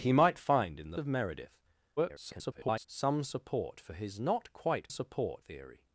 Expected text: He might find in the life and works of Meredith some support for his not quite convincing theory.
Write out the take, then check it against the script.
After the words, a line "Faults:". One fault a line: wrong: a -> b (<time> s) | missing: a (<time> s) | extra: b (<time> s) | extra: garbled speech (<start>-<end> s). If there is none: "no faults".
He might find in the of Meredith [garbled] some support for his not quite support theory.
Faults:
missing: life and works (1.0 s)
extra: garbled speech (2.0-2.9 s)
wrong: convincing -> support (4.9 s)